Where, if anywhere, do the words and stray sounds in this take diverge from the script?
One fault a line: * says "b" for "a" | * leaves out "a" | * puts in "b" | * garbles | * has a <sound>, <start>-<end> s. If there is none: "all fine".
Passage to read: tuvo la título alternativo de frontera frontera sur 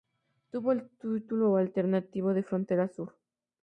* says "el" for "la"
* leaves out "frontera"